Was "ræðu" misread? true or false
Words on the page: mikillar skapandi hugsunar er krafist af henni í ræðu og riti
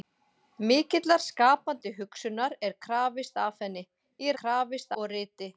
true